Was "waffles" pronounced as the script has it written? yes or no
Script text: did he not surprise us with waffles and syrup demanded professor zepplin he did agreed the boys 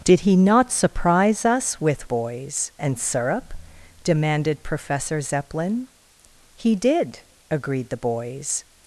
no